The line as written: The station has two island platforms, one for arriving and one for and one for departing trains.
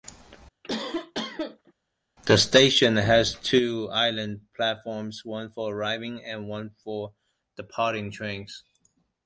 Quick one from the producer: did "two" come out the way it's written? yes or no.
yes